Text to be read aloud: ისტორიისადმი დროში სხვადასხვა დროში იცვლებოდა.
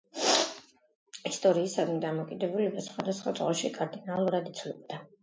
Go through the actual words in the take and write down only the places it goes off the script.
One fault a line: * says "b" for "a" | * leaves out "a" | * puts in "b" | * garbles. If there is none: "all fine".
* says "დამოკიდებულება" for "დროში"
* puts in "კარდინალურად"